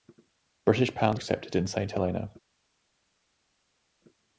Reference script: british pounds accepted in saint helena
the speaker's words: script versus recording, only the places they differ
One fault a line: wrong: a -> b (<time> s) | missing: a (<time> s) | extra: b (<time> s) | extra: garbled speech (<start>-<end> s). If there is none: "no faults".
no faults